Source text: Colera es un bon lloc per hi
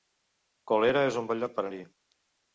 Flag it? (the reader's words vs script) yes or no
no